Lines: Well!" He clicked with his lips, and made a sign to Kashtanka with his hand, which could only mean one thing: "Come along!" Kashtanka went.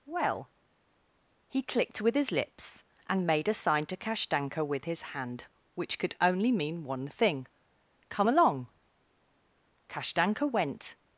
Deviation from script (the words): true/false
false